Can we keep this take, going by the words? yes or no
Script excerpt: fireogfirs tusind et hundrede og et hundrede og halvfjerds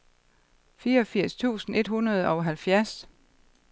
no